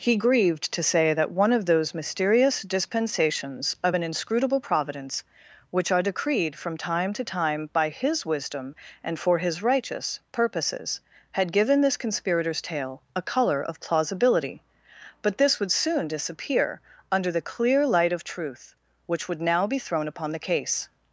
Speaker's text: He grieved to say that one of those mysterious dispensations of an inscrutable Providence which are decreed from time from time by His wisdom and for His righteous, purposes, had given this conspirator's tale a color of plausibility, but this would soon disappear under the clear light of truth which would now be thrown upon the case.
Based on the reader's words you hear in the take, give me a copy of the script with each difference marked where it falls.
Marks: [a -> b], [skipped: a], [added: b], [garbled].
He grieved to say that one of those mysterious dispensations of an inscrutable Providence which are decreed from time [from -> to] time by His wisdom and for His righteous, purposes, had given this conspirator's tale a color of plausibility, but this would soon disappear under the clear light of truth which would now be thrown upon the case.